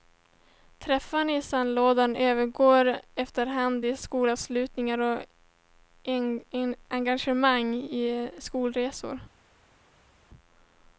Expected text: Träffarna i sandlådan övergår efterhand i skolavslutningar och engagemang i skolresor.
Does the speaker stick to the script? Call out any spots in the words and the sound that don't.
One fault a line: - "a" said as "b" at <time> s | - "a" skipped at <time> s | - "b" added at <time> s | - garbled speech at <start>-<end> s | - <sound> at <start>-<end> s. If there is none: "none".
none